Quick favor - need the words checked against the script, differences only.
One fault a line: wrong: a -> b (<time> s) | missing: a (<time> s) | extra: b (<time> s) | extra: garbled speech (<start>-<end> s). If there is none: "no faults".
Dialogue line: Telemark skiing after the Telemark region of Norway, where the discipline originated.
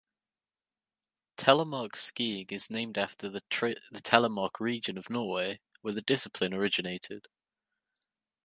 extra: is named (2.5 s)